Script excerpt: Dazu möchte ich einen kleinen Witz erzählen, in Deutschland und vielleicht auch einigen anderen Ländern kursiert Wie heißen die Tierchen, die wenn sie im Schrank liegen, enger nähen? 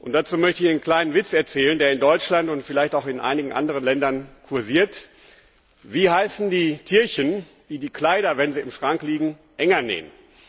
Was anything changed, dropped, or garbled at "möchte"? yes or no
no